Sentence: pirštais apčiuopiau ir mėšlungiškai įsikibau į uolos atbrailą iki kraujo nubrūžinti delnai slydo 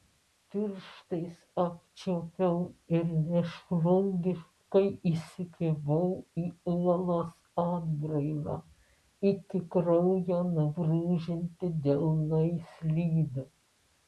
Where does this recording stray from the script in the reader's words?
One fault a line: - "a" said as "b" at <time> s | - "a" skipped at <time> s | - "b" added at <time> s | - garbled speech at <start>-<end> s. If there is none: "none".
none